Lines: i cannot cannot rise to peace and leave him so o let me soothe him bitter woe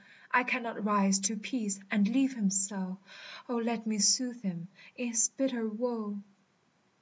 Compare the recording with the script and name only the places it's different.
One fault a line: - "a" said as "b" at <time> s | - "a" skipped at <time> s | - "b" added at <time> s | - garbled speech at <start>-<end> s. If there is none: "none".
- "cannot" skipped at 0.8 s
- "in his" added at 4.9 s